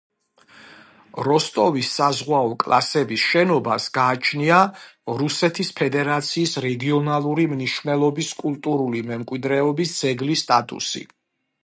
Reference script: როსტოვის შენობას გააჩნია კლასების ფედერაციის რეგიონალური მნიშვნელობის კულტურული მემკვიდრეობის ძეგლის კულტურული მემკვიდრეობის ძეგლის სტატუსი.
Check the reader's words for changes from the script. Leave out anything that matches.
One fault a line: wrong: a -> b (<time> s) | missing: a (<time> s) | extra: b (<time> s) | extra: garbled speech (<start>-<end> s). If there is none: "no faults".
extra: საზღვაო კლასების (2.0 s)
wrong: კლასების -> რუსეთის (5.2 s)
missing: კულტურული მემკვიდრეობის ძეგლის (10.5 s)